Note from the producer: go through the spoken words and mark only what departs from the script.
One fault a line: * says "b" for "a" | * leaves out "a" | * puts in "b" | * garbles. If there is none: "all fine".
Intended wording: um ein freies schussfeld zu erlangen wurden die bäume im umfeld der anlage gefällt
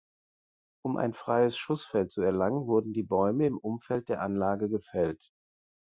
all fine